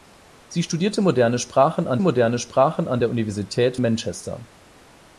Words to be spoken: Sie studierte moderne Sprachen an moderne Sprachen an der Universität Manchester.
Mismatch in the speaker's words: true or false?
false